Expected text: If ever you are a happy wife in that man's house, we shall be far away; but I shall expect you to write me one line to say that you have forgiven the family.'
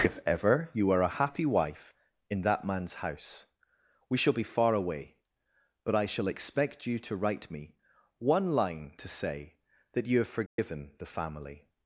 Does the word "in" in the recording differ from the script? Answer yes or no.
no